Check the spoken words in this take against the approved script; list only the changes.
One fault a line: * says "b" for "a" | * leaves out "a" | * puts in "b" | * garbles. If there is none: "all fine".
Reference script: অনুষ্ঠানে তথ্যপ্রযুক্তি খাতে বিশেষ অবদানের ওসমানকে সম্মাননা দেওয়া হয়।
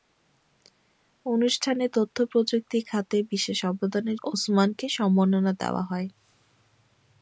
all fine